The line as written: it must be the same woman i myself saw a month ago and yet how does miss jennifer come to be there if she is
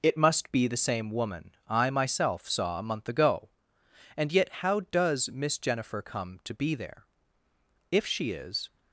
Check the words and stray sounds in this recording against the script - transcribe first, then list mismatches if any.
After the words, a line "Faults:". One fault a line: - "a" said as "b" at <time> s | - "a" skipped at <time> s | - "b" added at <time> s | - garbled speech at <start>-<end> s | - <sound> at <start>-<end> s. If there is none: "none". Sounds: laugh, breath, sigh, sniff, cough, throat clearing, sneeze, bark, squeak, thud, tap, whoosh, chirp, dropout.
it must be the same woman i myself saw a month ago and yet how does miss jennifer come to be there if she is
Faults:
none